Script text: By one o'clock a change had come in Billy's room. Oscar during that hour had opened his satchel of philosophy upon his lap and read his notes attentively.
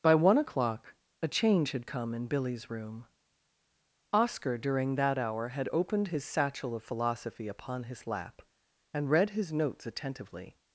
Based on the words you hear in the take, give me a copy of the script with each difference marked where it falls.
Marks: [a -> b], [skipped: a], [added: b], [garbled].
By one o'clock a change had come in Billy's room. Oscar during that hour had opened his satchel of philosophy upon his lap and read his notes attentively.